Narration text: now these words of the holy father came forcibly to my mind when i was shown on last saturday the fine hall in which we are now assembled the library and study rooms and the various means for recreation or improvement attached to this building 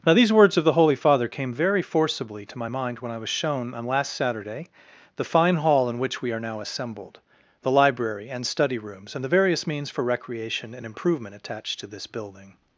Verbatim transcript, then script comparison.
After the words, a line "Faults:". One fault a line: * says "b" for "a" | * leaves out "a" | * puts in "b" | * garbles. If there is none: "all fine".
now these words of the holy father came very forcibly to my mind when i was shown on last saturday the fine hall in which we are now assembled the library and study rooms and the various means for recreation and improvement attached to this building
Faults:
* puts in "very"
* says "and" for "or"